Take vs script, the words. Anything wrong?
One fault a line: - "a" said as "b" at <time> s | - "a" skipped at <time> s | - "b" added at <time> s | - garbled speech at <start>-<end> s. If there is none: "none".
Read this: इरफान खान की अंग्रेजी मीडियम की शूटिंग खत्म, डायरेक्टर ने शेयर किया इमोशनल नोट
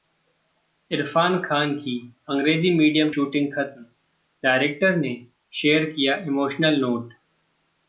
- "की" skipped at 3.1 s